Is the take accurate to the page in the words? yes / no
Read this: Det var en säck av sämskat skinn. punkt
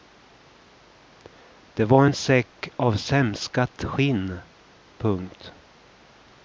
yes